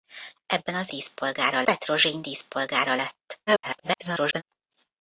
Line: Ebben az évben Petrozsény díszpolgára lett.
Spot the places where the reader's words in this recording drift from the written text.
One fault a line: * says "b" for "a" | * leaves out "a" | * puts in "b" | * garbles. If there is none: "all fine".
* says "díszpolgára" for "évben"
* garbles